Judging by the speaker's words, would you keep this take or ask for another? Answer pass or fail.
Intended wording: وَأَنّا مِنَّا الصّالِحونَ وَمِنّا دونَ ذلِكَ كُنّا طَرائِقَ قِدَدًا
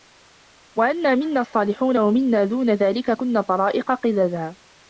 pass